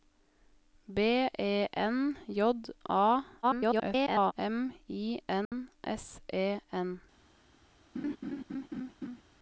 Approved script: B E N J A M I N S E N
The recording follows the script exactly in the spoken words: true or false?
false